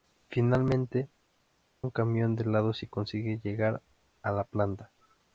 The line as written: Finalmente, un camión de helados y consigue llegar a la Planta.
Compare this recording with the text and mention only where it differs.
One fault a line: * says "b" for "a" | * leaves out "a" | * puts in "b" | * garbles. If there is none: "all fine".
all fine